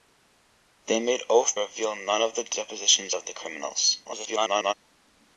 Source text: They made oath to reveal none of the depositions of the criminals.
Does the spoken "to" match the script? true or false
false